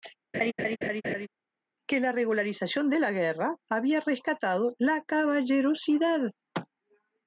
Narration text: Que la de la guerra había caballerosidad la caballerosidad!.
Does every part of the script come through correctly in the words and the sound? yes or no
no